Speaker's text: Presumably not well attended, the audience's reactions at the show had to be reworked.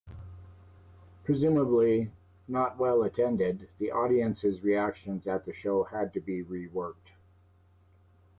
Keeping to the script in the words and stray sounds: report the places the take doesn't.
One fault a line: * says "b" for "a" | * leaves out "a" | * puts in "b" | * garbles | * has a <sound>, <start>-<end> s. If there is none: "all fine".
all fine